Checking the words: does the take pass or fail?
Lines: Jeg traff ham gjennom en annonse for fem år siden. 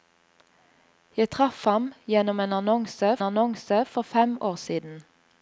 fail